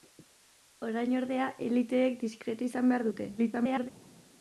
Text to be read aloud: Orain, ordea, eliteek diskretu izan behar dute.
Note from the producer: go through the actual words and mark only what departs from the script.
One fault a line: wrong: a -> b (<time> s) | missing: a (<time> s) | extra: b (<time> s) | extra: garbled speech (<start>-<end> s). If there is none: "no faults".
extra: garbled speech (3.4-3.9 s)